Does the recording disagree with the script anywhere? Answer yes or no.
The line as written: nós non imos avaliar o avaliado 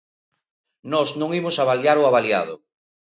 no